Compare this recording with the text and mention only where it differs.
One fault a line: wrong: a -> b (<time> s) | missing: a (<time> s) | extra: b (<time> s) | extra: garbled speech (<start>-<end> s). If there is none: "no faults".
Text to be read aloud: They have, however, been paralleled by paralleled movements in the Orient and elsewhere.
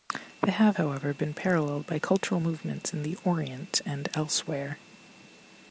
wrong: paralleled -> cultural (2.0 s)